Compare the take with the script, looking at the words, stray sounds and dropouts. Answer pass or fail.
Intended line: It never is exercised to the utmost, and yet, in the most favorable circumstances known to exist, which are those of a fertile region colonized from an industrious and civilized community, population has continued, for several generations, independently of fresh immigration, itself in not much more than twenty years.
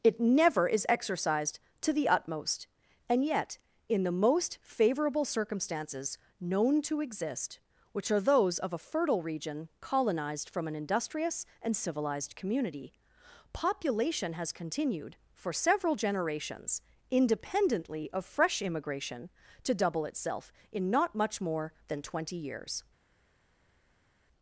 fail